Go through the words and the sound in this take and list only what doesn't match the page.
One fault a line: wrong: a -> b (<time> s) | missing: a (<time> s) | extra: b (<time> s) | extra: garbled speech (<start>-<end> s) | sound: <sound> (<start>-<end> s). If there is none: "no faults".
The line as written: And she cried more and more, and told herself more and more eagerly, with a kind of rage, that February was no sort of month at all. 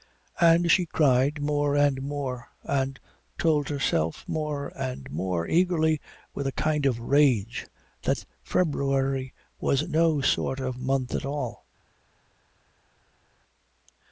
no faults